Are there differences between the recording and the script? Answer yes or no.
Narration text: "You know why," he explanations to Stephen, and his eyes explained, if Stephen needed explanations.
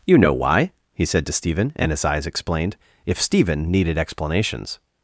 yes